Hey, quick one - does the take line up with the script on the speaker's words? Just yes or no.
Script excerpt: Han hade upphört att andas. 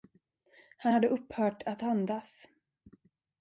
yes